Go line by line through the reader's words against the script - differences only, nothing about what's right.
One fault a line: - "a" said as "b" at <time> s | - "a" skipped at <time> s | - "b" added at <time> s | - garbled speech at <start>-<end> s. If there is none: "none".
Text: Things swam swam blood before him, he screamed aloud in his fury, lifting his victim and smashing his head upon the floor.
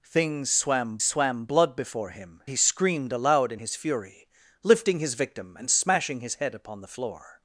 none